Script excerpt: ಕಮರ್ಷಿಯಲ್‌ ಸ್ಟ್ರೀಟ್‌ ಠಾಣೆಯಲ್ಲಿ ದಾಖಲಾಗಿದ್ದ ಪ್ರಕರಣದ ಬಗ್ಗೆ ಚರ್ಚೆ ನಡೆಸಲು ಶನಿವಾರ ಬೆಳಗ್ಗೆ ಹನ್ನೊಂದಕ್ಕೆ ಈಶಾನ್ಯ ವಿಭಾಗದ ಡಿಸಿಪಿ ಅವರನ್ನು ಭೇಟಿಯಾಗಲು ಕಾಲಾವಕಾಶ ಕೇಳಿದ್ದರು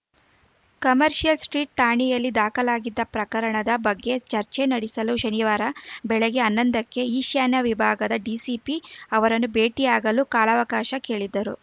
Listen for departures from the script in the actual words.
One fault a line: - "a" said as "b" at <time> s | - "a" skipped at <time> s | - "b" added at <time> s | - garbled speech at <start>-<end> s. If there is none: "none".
none